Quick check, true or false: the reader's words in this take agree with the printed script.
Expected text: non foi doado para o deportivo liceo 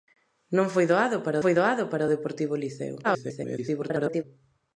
false